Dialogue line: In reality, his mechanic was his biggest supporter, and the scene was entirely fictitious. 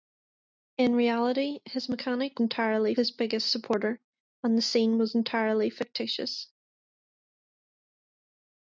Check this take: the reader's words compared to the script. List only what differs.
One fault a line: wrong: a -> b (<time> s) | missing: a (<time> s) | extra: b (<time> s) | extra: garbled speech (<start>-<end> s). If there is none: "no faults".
wrong: was -> entirely (2.4 s)